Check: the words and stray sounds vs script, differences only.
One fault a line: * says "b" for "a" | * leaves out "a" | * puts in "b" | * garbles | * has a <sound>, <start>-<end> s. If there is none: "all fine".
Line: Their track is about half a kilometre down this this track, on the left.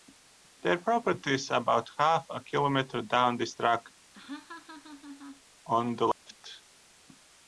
* says "property" for "track"
* leaves out "this"
* has a laugh, 4.1-5.4 s
* has a dropout, 6.1-6.3 s